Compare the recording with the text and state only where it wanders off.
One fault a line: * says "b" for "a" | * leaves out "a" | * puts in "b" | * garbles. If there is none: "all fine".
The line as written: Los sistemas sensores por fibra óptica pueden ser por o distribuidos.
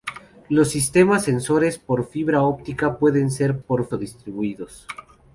all fine